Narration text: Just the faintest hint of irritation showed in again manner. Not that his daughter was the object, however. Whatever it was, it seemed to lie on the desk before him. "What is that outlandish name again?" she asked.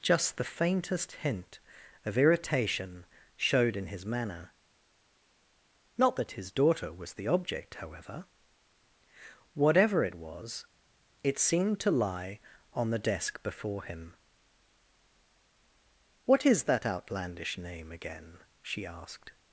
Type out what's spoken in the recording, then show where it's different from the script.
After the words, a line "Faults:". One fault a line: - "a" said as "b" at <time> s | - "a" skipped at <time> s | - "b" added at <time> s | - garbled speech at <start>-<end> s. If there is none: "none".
Just the faintest hint of irritation showed in his manner. Not that his daughter was the object, however. Whatever it was, it seemed to lie on the desk before him. "What is that outlandish name again?" she asked.
Faults:
- "again" said as "his" at 3.9 s